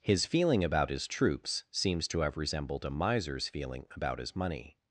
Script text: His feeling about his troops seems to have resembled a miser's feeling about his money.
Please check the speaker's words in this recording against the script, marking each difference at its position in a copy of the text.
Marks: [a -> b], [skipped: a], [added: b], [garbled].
His feeling about his troops seems to have resembled a miser's feeling about his money.